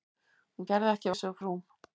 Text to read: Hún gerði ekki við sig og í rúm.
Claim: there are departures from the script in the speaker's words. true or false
false